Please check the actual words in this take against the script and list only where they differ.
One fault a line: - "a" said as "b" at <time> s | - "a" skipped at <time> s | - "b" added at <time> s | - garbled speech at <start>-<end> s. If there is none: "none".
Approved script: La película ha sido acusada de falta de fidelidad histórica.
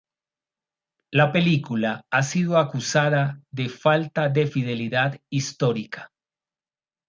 none